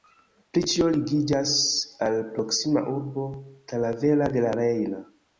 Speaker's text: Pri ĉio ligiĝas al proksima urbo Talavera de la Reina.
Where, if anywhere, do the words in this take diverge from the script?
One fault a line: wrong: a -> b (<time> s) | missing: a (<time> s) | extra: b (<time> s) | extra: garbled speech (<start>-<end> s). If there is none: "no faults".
no faults